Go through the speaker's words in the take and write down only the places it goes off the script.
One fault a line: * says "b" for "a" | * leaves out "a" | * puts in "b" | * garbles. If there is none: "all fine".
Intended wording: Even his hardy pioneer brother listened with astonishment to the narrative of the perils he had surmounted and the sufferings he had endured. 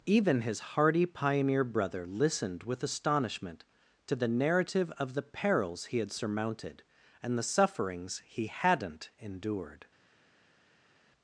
* says "hadn't" for "had"